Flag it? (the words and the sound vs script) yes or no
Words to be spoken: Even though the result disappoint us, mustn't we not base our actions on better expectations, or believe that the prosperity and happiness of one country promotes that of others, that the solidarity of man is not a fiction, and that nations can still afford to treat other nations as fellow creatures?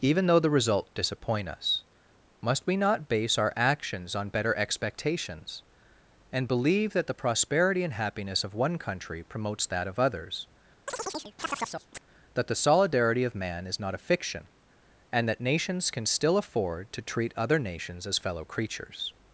yes